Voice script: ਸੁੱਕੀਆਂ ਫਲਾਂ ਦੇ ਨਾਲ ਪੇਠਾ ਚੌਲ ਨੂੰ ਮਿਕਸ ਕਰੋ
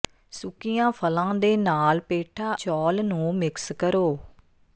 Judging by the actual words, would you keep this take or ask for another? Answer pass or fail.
pass